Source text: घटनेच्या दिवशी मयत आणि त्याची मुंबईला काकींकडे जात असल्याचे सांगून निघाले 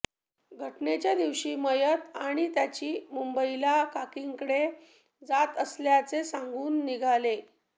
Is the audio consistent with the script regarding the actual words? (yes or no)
yes